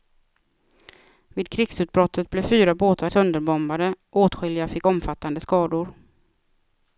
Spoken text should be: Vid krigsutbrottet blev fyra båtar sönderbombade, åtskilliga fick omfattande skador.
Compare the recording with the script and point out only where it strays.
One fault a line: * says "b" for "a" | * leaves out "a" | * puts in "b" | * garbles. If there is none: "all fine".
all fine